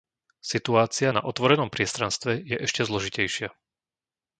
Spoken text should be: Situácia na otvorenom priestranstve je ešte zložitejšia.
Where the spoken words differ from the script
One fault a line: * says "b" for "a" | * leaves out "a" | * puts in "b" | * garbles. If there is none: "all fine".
all fine